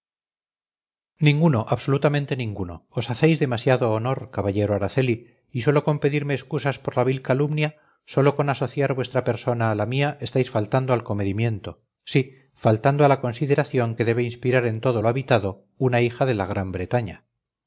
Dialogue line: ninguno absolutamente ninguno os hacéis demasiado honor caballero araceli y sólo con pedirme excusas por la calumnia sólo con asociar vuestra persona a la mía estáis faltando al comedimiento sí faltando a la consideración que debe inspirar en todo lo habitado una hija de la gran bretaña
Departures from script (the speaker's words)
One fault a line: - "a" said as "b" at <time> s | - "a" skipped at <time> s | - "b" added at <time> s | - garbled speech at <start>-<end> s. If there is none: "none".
- "vil" added at 7.1 s